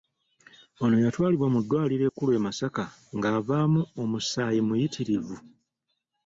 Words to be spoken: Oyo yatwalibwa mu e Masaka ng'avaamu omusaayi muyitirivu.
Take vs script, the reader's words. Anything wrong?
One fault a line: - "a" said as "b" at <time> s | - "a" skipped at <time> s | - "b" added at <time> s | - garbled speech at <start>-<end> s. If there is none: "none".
- "Oyo" said as "Ono" at 0.8 s
- "ddwaliro ekkulu" added at 1.6 s